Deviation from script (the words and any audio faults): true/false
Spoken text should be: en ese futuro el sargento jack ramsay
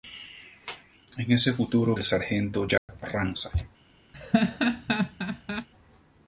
true